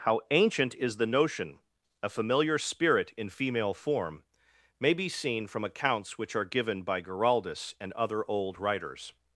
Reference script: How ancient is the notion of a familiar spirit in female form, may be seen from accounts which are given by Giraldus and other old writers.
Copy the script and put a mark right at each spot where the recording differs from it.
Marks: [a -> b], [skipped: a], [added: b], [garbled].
How ancient is the notion [skipped: of] a familiar spirit in female form, may be seen from accounts which are given by Giraldus and other old writers.